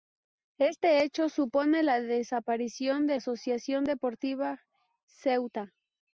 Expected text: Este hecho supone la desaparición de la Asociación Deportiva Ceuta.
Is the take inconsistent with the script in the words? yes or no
yes